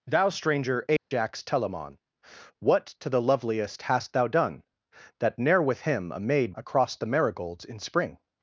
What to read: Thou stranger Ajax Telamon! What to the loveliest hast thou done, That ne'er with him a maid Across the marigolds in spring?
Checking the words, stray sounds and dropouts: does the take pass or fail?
fail